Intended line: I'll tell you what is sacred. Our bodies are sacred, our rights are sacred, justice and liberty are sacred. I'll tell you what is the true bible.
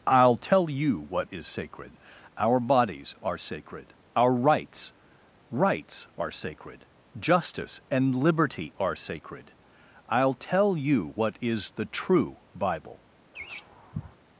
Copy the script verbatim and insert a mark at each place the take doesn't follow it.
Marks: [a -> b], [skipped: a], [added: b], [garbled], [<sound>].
I'll tell you what is sacred. Our bodies are sacred, our rights [added: rights] are sacred, justice and liberty are sacred. I'll tell you what is the true bible. [laugh]